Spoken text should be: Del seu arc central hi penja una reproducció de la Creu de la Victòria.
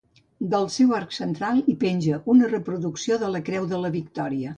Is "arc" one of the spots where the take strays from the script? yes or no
no